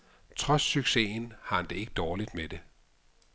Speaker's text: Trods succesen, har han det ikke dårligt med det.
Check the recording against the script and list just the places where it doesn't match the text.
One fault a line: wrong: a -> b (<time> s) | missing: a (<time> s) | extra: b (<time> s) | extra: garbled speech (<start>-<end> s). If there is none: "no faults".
no faults